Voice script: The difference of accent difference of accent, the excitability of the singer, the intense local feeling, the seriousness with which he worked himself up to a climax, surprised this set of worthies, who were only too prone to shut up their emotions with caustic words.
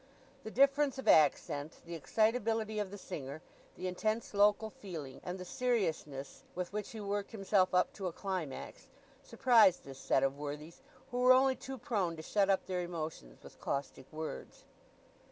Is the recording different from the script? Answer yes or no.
yes